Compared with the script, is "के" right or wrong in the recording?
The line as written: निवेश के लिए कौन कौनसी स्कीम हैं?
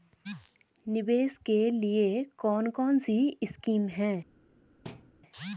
right